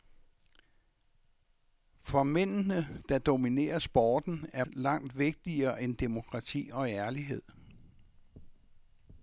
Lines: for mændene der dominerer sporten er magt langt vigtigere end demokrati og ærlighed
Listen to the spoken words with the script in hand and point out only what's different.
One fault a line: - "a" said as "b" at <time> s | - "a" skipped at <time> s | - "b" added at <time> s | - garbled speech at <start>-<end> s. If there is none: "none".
- "magt" skipped at 4.6 s